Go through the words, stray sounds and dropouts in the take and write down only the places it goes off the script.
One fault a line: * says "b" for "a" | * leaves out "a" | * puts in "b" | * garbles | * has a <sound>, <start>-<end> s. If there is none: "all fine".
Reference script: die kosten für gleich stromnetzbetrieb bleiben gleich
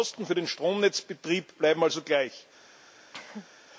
* says "den" for "gleich"
* puts in "also"
* has a cough, 3.1-3.5 s